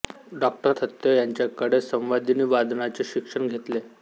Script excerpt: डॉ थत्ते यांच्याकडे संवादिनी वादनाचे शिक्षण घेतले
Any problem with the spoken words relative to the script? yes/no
no